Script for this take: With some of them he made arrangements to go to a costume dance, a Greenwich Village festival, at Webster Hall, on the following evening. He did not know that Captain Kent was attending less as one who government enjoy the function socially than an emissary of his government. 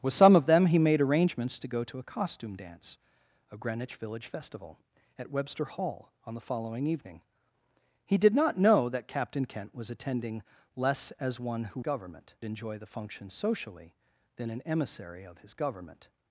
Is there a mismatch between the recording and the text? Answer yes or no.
no